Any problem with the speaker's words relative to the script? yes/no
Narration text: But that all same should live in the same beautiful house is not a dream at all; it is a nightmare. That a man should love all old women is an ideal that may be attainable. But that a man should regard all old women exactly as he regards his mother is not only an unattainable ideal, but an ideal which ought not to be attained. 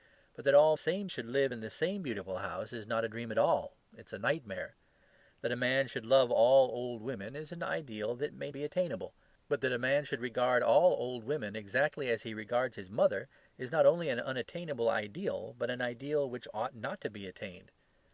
no